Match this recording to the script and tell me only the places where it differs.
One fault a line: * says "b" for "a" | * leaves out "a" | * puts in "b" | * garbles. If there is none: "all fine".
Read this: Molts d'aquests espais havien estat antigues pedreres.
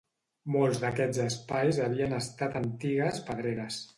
all fine